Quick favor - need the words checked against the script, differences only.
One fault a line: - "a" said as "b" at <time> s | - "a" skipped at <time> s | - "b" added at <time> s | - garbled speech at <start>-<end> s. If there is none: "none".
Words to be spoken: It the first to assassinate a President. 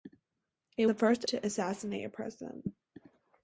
none